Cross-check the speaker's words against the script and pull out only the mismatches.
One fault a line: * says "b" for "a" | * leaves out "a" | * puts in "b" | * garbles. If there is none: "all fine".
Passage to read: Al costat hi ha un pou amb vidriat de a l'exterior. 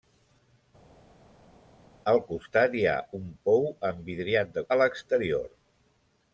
all fine